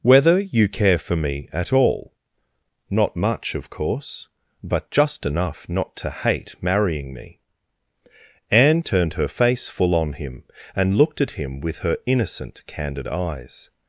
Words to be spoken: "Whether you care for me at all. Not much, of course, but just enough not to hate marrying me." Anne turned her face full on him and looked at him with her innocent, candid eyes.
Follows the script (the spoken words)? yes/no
yes